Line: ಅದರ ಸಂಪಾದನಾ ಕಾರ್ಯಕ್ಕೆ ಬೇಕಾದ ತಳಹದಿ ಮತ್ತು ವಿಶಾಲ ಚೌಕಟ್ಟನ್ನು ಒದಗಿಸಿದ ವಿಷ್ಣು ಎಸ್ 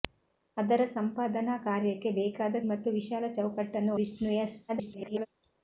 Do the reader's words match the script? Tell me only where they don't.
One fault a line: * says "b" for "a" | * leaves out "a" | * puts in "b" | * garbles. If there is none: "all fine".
* leaves out "ತಳಹದಿ"
* leaves out "ಒದಗಿಸಿದ"
* garbles